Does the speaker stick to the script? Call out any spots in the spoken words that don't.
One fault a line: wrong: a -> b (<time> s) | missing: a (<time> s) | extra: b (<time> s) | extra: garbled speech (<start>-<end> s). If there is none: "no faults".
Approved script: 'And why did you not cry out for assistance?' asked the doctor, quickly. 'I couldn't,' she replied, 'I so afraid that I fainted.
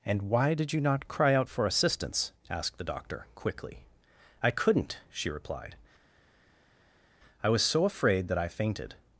extra: was (7.5 s)